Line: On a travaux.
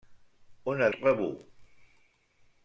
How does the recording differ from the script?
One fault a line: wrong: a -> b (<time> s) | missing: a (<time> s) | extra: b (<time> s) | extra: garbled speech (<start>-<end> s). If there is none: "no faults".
no faults